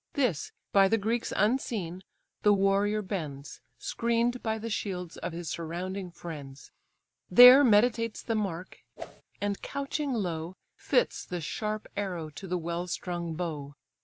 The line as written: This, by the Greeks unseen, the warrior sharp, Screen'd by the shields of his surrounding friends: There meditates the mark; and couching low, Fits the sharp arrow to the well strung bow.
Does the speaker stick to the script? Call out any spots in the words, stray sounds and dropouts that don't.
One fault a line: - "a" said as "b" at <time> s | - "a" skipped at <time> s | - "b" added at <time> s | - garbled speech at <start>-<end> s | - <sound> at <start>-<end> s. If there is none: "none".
- "sharp" said as "bends" at 3.0 s
- whoosh at 9.0-9.2 s